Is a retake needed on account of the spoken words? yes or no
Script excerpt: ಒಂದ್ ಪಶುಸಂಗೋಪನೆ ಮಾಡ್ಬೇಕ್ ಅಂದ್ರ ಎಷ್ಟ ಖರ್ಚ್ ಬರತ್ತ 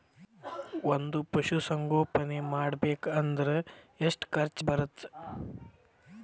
no